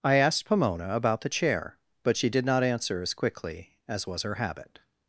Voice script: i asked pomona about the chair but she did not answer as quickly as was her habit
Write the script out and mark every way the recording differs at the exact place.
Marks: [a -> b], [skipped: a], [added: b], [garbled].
i asked pomona about the chair but she did not answer as quickly as was her habit